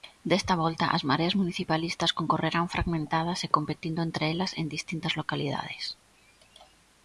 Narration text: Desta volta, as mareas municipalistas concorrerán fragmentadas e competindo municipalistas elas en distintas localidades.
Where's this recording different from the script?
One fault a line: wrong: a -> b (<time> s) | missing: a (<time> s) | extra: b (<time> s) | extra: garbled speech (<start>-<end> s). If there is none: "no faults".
wrong: municipalistas -> entre (4.1 s)